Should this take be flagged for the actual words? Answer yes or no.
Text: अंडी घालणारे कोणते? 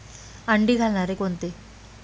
no